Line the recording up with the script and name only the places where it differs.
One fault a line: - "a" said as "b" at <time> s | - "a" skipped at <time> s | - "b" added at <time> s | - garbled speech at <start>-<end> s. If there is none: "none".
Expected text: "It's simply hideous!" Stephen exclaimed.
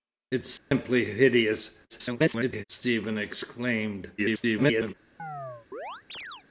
- garbled speech at 1.9-2.6 s
- garbled speech at 4.2-4.9 s